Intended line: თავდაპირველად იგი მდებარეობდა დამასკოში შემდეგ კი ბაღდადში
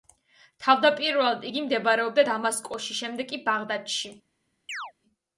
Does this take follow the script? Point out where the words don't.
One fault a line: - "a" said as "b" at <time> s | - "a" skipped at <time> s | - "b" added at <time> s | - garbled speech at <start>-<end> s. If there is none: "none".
none